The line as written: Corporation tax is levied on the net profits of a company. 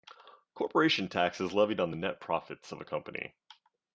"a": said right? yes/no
yes